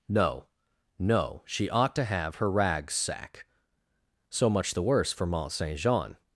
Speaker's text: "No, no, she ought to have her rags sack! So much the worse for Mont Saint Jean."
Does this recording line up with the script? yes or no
yes